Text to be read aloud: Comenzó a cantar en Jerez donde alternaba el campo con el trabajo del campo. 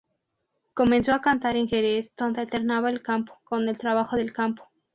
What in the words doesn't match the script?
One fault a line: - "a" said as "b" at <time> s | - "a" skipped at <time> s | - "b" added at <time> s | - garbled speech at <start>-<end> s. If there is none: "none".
none